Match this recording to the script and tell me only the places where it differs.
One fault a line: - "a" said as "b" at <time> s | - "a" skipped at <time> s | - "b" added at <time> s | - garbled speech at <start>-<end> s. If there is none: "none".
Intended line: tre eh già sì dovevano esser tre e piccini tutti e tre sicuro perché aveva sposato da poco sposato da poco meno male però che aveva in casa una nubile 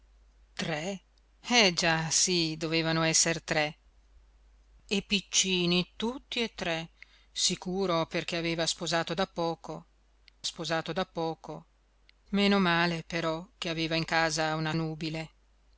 none